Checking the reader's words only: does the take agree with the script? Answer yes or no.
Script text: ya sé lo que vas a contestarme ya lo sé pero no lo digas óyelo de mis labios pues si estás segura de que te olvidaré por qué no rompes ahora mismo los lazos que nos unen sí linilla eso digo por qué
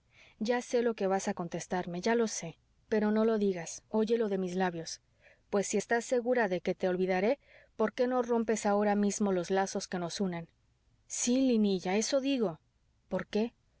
yes